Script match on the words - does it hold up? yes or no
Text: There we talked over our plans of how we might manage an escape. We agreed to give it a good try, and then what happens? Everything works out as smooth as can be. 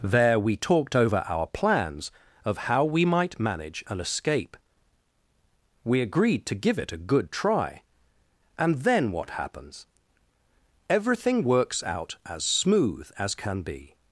yes